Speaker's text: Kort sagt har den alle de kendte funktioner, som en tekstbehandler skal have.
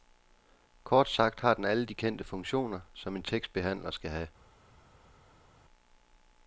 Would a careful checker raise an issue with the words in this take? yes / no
no